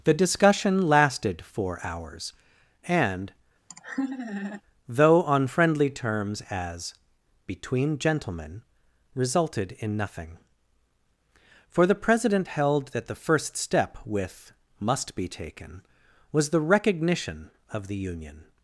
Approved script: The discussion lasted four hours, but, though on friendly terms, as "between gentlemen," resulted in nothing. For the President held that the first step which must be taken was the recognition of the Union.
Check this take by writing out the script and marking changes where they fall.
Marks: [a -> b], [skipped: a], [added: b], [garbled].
The discussion lasted four hours, [but, -> and] though on friendly terms, as "between gentlemen," resulted in nothing. For the President held that the first step [which -> with] must be taken was the recognition of the Union.